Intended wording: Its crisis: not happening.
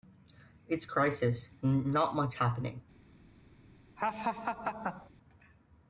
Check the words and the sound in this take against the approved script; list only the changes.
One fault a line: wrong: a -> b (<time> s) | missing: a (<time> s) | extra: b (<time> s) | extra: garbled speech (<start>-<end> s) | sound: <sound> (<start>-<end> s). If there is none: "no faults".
extra: much (2.2 s)
sound: laugh (4.0-5.1 s)